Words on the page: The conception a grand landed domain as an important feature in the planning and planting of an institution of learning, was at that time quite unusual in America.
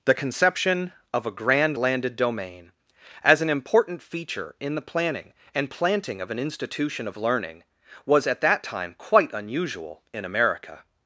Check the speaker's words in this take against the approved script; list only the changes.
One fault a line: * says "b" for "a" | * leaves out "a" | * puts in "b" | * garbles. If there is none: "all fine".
* puts in "of"